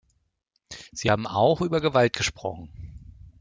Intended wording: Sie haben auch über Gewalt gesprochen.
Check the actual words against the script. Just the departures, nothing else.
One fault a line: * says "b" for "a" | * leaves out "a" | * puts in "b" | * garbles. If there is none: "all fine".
all fine